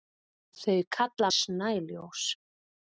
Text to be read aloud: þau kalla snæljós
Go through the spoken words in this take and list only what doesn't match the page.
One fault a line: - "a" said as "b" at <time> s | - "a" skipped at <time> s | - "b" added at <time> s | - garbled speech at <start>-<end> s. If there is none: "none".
none